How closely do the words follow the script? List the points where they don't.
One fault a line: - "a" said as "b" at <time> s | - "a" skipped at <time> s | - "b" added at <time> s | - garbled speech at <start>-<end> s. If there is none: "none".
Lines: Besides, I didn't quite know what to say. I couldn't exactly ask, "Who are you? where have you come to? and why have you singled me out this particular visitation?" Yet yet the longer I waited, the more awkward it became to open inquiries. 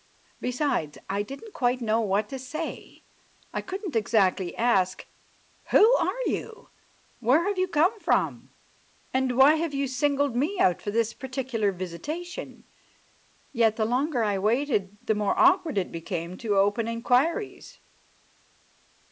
- "to" said as "from" at 8.0 s
- "for" added at 10.8 s
- "yet" skipped at 13.7 s